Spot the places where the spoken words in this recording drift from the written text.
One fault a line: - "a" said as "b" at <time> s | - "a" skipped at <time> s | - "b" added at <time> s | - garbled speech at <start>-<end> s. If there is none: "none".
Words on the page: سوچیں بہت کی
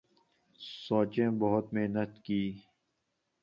- "محنت" added at 1.7 s